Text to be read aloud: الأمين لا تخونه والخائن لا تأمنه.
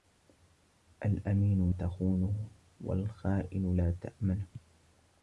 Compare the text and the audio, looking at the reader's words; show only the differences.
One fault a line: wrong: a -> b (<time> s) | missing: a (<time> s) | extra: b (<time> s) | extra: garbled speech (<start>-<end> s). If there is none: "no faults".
missing: لا (1.7 s)